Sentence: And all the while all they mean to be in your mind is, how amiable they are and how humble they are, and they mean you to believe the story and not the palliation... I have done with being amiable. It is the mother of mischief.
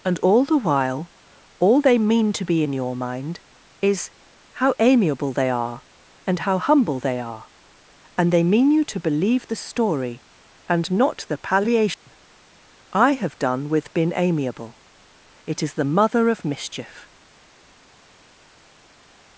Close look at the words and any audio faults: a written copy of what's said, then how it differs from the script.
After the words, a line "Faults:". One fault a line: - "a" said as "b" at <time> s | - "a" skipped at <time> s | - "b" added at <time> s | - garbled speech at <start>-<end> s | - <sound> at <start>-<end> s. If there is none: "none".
And all the while all they mean to be in your mind is, how amiable they are and how humble they are, and they mean you to believe the story and not the palliation... I have done with been amiable. It is the mother of mischief.
Faults:
- "being" said as "been" at 13.9 s